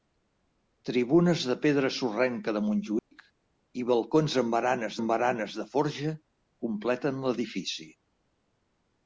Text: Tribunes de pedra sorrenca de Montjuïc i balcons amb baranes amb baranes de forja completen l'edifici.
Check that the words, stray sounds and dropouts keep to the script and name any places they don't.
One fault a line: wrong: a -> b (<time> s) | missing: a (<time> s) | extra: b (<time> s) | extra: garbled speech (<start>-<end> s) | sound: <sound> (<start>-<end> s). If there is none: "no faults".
sound: dropout (3.0-3.1 s)